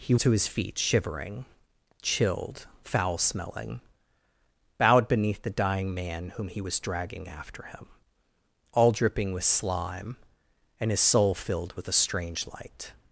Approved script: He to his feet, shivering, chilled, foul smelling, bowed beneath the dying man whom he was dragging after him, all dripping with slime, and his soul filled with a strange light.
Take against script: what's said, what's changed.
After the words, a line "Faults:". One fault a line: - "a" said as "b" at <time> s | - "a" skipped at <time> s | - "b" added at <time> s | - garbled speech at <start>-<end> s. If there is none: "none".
He to his feet, shivering, chilled, foul smelling, bowed beneath the dying man whom he was dragging after him, all dripping with slime, and his soul filled with a strange light.
Faults:
none